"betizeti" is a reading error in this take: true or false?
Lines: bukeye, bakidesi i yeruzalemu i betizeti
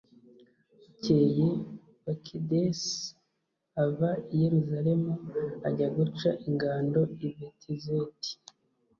false